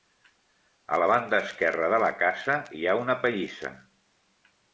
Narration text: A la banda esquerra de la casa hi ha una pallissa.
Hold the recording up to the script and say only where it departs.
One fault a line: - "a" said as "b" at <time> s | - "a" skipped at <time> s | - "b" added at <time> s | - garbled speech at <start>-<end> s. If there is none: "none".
none